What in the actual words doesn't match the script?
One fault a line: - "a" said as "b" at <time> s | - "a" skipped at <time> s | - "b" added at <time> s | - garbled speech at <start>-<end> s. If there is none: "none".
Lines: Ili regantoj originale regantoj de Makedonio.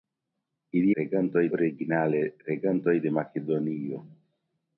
none